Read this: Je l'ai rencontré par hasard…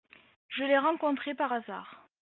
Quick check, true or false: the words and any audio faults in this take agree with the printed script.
true